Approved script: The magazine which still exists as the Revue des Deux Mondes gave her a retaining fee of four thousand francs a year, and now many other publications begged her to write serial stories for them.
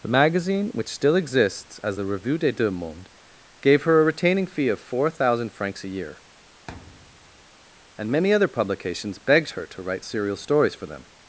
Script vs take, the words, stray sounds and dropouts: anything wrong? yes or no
yes